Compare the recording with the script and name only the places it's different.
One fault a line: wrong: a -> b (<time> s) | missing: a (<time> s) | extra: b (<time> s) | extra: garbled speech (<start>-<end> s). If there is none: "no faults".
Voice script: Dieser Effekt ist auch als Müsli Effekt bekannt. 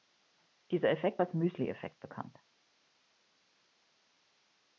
missing: ist auch (1.2 s)